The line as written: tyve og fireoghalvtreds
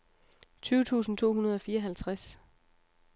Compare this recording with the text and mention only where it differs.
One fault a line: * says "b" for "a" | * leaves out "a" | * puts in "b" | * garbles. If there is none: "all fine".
* puts in "tusind to hundrede"